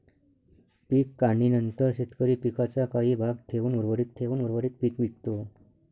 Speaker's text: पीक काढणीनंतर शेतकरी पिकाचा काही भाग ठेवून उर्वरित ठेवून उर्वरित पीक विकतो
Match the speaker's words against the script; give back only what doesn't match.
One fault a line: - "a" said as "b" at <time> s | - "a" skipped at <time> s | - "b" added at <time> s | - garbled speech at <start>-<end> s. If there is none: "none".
none